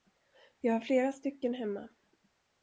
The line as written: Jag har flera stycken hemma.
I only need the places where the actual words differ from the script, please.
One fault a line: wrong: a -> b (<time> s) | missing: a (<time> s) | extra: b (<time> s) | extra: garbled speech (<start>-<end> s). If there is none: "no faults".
no faults